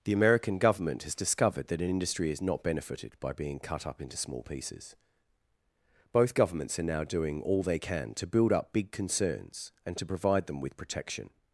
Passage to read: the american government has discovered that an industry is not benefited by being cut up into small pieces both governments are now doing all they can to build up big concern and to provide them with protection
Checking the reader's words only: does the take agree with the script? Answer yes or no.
no